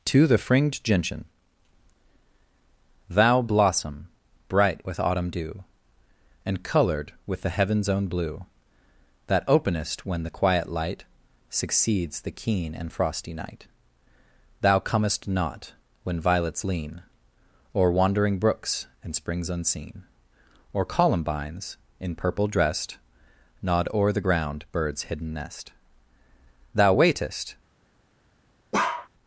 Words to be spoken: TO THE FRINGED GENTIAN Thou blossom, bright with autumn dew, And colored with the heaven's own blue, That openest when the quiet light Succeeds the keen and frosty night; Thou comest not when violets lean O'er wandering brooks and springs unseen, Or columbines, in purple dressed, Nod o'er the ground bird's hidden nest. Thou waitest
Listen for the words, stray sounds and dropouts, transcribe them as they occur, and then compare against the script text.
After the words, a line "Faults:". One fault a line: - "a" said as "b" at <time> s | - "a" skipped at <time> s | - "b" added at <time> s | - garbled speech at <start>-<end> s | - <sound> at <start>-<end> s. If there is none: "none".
TO THE FRINGED GENTIAN Thou blossom, bright with autumn dew, And colored with the heaven's own blue, That openest when the quiet light Succeeds the keen and frosty night; Thou comest not when violets lean O'er wandering brooks and springs unseen, Or columbines, in purple dressed, Nod o'er the ground bird's hidden nest. Thou waitest
Faults:
- bark at 28.7-29.1 s